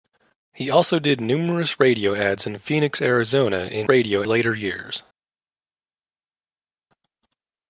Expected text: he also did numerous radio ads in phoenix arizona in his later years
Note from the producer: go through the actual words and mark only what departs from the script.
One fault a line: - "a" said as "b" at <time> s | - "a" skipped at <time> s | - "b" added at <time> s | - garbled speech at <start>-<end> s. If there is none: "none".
- "his" said as "radio" at 3.9 s